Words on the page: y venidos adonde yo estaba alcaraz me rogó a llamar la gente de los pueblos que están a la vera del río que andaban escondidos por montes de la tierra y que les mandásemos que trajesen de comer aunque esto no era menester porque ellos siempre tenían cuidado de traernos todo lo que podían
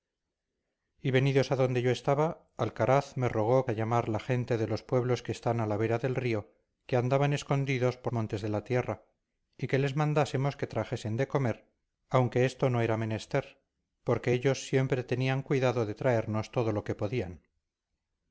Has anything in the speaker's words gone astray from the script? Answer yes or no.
no